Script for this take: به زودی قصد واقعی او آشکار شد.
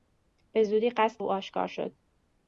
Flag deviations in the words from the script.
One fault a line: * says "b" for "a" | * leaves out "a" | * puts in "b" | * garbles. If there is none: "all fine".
* leaves out "واقعی"